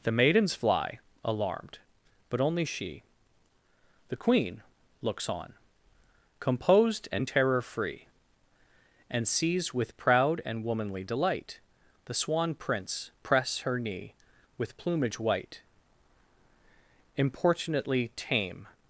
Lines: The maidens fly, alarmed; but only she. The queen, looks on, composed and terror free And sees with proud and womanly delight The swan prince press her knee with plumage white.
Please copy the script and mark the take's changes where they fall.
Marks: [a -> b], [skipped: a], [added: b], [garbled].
The maidens fly, alarmed; but only she. The queen, looks on, composed and terror free And sees with proud and womanly delight The swan prince press her knee with plumage white. [added: Importunately tame]